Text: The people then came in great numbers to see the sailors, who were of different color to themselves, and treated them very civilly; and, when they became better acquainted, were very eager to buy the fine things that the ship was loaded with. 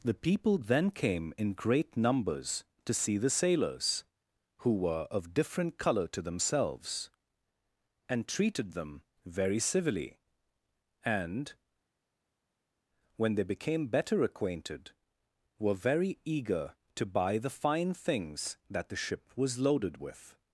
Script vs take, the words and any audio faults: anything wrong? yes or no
no